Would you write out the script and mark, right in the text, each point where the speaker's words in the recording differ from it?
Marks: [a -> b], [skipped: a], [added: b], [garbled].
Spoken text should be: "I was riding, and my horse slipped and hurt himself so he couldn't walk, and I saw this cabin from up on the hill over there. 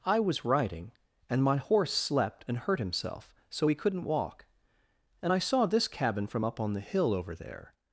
"I was riding, and my horse [slipped -> slept] and hurt himself so he couldn't walk, and I saw this cabin from up on the hill over there.